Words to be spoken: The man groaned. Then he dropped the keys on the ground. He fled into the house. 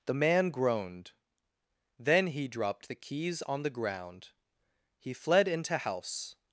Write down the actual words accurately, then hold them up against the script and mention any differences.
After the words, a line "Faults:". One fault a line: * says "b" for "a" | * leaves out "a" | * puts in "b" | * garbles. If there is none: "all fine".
The man groaned. Then he dropped the keys on the ground. He fled into house.
Faults:
* leaves out "the"